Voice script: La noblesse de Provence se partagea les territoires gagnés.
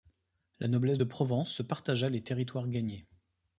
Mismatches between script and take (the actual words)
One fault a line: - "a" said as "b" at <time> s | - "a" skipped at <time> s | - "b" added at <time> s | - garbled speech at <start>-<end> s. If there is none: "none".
none